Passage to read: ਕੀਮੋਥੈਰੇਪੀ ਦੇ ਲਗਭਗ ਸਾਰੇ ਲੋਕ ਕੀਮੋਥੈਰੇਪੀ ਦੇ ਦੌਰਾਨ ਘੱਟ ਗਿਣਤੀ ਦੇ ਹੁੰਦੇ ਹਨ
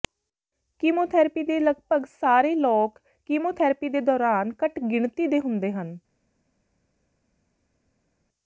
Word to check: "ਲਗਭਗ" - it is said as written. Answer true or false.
true